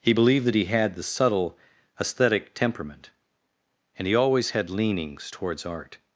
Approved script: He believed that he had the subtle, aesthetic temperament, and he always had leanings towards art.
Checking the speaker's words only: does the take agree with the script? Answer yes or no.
yes